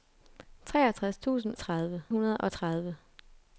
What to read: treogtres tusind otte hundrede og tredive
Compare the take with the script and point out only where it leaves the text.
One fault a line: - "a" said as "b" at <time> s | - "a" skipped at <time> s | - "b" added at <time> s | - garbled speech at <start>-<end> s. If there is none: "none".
- "otte" said as "tredive" at 1.6 s